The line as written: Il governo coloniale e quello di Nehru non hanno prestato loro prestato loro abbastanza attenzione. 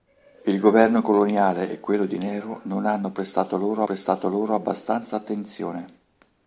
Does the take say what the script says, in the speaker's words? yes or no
yes